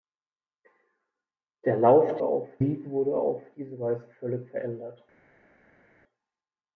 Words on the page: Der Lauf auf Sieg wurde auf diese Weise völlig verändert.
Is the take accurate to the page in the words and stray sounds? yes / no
yes